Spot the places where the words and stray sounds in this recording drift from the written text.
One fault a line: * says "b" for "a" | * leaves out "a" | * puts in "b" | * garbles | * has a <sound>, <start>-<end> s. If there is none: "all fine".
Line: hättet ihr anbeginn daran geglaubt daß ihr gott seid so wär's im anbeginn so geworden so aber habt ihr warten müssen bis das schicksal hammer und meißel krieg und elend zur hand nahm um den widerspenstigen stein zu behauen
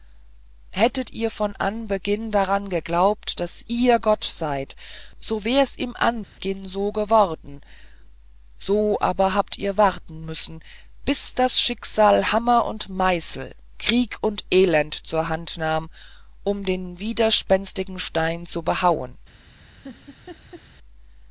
* puts in "von"
* has a dropout, 6.2-6.4 s
* has a laugh, 19.8-20.6 s